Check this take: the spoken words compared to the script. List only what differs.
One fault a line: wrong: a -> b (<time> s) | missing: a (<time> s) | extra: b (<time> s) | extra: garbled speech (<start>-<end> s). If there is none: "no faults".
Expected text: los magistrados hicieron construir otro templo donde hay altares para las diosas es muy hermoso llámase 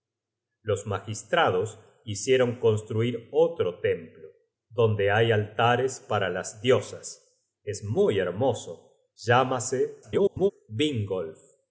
extra: garbled speech (10.0-10.5 s)